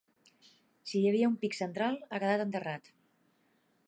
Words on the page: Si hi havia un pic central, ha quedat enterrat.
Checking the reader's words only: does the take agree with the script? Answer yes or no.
yes